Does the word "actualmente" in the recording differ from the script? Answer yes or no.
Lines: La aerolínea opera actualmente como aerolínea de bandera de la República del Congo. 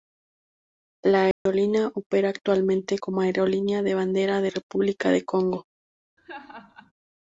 no